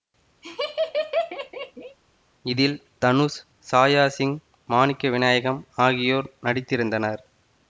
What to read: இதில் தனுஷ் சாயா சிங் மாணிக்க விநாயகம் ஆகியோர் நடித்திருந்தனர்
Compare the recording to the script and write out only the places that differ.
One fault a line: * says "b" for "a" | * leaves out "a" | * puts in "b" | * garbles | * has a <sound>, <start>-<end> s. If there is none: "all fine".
* has a laugh, 0.4-2.0 s